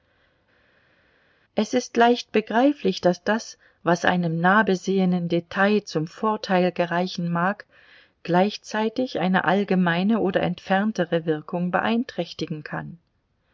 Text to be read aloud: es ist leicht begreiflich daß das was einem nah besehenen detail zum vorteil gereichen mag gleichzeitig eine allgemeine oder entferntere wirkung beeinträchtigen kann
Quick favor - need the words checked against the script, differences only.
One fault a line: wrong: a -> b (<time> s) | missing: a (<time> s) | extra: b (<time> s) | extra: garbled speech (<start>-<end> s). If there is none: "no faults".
no faults